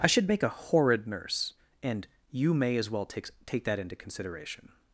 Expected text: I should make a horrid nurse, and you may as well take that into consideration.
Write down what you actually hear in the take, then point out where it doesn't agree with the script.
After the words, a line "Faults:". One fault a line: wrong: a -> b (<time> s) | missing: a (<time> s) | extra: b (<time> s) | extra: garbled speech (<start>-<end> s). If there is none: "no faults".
I should make a horrid nurse, and you may as well take take that into consideration.
Faults:
extra: take (3.5 s)